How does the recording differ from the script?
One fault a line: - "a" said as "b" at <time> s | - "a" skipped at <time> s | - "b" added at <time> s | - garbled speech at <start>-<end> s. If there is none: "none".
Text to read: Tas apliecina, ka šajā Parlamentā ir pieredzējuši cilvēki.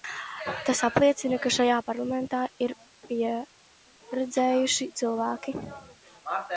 none